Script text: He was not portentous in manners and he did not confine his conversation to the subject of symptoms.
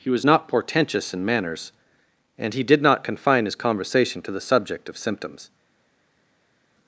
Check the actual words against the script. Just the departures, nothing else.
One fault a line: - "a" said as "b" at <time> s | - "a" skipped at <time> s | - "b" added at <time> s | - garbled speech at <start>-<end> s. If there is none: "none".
none